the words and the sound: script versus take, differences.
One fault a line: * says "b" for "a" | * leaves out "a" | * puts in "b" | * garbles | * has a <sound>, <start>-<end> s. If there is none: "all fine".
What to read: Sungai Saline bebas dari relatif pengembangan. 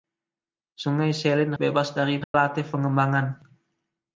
* has a dropout, 2.2-2.3 s